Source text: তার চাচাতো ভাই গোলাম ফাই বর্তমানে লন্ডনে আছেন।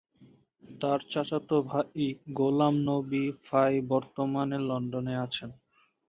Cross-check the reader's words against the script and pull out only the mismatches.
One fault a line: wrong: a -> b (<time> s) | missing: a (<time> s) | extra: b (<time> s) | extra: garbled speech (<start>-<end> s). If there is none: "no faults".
extra: নবী (2.9 s)